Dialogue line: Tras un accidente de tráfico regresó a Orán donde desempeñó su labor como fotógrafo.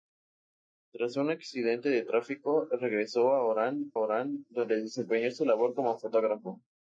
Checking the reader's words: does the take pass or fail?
fail